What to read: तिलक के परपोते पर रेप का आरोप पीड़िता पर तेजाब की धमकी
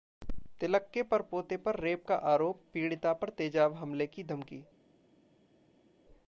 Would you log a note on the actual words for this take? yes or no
yes